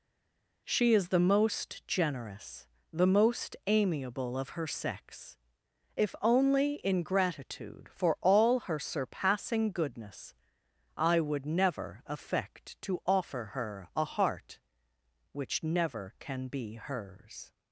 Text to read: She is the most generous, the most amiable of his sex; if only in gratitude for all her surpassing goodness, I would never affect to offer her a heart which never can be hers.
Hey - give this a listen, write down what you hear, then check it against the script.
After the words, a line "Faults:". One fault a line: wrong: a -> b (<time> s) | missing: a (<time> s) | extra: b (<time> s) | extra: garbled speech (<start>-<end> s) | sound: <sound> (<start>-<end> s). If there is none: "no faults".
She is the most generous, the most amiable of her sex; if only in gratitude for all her surpassing goodness, I would never affect to offer her a heart which never can be hers.
Faults:
wrong: his -> her (4.5 s)